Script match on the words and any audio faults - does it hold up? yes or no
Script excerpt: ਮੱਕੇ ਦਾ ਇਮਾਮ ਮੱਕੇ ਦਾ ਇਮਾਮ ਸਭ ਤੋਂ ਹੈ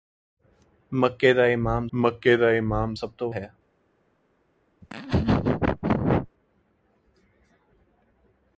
no